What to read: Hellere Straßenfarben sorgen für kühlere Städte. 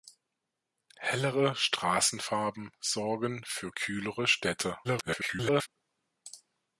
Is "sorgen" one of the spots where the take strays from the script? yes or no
no